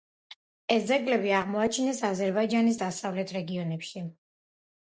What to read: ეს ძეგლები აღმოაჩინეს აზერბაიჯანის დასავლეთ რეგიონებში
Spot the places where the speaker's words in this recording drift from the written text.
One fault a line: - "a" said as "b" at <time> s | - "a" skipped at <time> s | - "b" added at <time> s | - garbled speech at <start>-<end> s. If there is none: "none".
none